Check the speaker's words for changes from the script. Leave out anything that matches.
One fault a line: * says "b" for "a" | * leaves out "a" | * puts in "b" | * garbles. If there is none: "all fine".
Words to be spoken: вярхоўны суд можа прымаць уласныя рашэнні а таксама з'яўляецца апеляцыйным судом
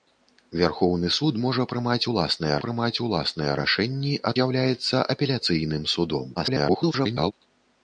* puts in "прымаць уласныя"
* leaves out "таксама"
* garbles